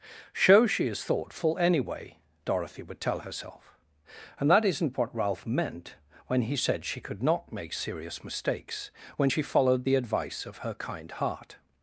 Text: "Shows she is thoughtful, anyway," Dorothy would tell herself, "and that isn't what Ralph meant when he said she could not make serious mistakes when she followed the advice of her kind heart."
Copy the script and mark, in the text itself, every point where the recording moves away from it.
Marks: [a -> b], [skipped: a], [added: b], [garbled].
"Shows she is thoughtful, anyway," Dorothy would tell herself, "and that isn't what Ralph meant when he said she could not make serious mistakes when she followed the advice of her kind heart."